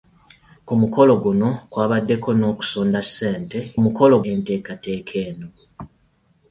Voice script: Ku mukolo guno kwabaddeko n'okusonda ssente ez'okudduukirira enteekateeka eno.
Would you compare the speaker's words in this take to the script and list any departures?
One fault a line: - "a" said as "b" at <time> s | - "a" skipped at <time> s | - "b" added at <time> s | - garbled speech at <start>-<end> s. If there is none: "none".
- "ez'okudduukirira" said as "mukolo" at 3.8 s